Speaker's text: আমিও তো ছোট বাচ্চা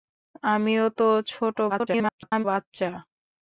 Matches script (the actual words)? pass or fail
fail